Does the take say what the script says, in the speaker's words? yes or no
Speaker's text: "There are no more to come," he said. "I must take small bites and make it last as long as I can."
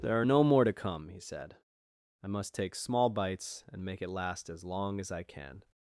yes